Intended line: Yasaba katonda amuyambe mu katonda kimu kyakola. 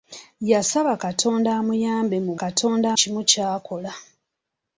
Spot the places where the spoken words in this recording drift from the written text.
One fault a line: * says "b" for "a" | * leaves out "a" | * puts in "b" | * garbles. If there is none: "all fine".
all fine